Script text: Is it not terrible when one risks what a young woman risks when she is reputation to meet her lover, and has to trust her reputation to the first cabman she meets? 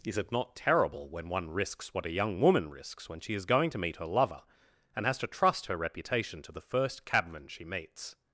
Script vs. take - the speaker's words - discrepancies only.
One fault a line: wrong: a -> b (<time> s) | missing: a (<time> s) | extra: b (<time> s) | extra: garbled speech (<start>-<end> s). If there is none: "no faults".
wrong: reputation -> going (3.5 s)